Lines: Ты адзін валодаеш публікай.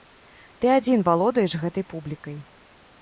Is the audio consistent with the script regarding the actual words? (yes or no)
no